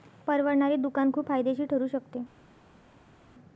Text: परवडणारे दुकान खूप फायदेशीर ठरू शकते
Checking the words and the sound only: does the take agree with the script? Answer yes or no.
yes